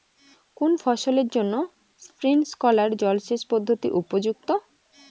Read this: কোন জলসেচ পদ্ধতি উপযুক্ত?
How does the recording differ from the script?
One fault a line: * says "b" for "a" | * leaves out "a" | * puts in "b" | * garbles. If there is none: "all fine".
* puts in "ফসলের জন্য স্প্রিংকলার"